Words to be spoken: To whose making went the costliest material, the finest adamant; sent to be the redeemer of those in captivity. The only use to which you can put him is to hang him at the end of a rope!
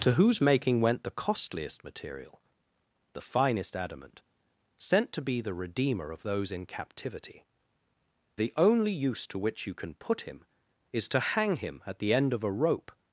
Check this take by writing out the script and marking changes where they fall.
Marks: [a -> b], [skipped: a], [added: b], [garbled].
To whose making went the costliest material, the finest adamant; sent to be the redeemer of those in captivity. The only use to which you can put him is to hang him at the end of a rope!